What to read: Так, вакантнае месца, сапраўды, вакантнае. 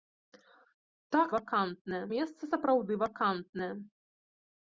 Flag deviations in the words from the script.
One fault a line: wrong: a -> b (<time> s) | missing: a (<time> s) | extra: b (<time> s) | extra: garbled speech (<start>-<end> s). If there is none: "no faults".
no faults